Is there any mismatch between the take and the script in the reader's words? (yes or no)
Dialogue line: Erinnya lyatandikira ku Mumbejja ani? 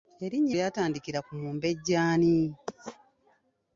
no